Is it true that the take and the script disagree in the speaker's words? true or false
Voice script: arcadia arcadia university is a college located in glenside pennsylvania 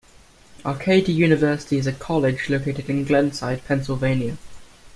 true